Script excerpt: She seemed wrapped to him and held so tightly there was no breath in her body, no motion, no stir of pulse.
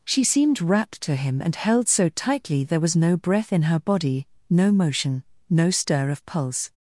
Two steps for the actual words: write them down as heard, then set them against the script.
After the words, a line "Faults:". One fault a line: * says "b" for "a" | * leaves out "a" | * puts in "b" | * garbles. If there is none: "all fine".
She seemed wrapped to him and held so tightly there was no breath in her body, no motion, no stir of pulse.
Faults:
all fine